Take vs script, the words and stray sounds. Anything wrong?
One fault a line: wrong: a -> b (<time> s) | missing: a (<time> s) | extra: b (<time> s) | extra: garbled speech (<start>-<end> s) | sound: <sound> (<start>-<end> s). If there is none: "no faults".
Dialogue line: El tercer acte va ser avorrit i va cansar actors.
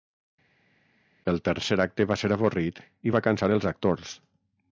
extra: els (3.6 s)